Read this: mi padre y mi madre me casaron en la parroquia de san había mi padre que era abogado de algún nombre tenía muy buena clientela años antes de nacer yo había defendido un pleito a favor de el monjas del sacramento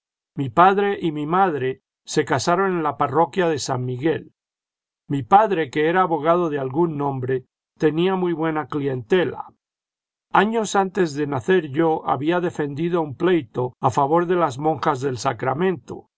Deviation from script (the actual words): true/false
true